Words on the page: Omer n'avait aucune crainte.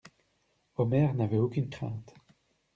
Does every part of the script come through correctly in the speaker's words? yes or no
yes